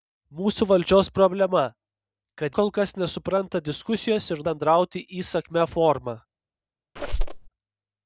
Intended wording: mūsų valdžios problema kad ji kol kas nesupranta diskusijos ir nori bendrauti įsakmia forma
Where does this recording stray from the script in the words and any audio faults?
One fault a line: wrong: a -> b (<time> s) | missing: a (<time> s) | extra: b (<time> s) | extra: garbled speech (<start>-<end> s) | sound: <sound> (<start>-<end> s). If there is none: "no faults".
missing: ji (2.5 s)
missing: nori (4.4 s)
sound: squeak (7.0-7.5 s)